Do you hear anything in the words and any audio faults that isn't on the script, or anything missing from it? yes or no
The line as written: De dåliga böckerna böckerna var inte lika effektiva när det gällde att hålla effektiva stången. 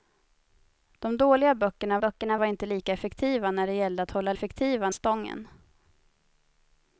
no